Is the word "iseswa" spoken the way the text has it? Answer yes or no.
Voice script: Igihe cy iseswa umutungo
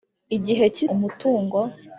no